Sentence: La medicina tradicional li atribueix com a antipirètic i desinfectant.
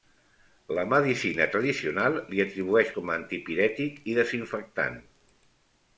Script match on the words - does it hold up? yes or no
yes